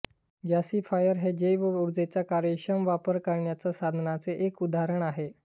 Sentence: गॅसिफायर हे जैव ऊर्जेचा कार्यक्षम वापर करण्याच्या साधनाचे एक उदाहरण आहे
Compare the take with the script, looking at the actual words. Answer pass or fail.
pass